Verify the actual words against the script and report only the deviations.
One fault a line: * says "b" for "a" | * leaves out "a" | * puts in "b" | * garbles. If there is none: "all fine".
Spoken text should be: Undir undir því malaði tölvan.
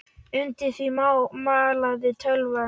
* leaves out "undir"